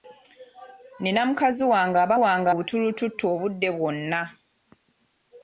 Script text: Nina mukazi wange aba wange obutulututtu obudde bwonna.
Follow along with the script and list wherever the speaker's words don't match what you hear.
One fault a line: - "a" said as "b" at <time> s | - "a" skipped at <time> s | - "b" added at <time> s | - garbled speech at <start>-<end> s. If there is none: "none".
none